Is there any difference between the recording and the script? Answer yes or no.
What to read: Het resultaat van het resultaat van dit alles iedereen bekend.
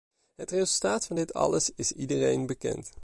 yes